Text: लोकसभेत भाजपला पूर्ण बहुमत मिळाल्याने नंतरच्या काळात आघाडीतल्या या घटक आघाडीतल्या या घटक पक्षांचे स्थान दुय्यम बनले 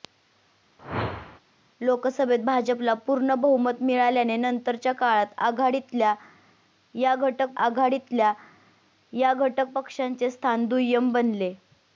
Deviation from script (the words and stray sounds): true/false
true